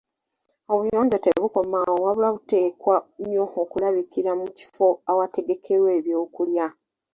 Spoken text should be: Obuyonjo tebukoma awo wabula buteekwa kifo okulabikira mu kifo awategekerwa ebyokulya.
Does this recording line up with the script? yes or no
no